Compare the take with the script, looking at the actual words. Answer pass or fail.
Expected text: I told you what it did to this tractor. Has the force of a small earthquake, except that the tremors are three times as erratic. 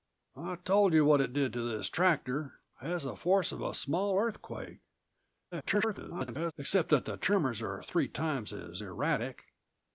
fail